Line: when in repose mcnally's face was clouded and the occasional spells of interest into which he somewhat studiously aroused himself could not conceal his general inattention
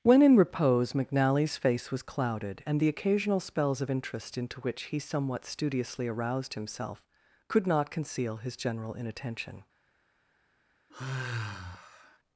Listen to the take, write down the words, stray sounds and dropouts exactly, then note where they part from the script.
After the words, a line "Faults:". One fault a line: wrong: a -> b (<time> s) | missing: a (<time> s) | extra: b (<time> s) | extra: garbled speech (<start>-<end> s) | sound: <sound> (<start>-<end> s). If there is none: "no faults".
when in repose mcnally's face was clouded and the occasional spells of interest into which he somewhat studiously aroused himself could not conceal his general inattention
Faults:
sound: sigh (10.9-12.2 s)